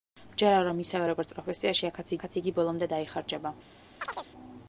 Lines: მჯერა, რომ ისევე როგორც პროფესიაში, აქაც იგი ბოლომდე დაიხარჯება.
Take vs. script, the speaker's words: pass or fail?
fail